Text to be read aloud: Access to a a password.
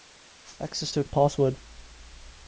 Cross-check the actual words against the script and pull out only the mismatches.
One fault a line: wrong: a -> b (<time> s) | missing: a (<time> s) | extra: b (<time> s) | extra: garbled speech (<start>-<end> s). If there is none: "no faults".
no faults